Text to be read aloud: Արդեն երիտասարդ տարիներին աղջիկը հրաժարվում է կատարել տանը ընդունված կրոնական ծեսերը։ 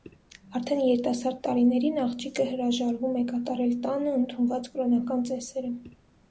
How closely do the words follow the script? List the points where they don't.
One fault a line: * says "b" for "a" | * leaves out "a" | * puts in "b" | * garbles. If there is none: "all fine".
all fine